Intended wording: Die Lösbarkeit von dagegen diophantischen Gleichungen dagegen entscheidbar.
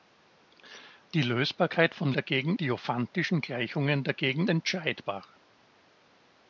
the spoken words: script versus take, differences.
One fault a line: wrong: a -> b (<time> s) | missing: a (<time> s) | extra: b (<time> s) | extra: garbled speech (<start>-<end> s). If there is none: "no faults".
no faults